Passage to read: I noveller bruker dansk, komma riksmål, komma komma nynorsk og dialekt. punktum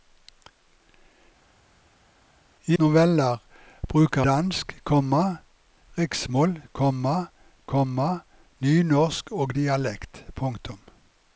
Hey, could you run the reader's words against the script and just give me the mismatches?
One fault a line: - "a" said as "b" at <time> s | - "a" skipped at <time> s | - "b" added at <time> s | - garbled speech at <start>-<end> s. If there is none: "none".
none